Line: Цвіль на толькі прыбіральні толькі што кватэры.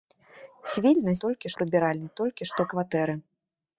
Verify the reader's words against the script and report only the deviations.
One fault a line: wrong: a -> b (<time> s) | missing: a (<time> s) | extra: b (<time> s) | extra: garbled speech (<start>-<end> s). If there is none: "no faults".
no faults